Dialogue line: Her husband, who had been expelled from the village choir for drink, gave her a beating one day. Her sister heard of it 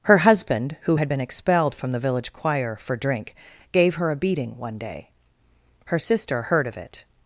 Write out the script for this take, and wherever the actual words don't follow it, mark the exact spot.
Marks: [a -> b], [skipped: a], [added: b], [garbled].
Her husband, who had been expelled from the village choir for drink, gave her a beating one day. Her sister heard of it